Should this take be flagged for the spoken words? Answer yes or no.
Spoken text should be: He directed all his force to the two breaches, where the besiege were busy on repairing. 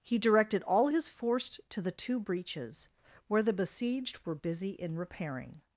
yes